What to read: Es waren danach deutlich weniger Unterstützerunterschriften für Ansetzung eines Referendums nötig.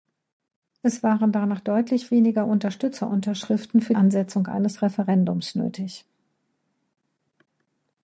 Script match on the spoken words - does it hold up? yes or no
yes